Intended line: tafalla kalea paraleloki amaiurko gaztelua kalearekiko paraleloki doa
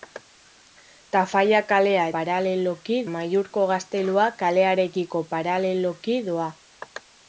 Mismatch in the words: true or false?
false